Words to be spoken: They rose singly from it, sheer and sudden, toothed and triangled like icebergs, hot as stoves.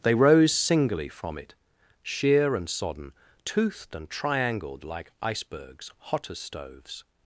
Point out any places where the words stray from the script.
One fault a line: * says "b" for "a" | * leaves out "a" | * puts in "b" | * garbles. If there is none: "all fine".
* says "sodden" for "sudden"